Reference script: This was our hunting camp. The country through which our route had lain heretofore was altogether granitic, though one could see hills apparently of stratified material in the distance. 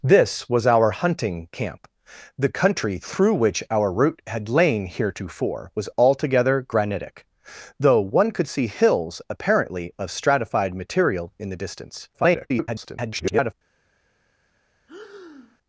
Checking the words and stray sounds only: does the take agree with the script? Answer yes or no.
no